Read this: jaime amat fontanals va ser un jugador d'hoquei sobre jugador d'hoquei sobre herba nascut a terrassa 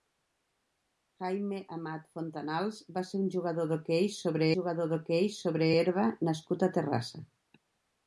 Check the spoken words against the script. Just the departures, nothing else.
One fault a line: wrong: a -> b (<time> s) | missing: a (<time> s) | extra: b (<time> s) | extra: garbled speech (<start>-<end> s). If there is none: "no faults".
no faults